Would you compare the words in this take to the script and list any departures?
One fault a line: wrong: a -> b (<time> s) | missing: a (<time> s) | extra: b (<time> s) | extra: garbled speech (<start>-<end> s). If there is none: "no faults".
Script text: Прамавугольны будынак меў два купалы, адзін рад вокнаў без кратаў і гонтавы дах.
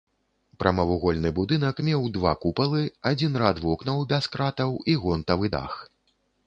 no faults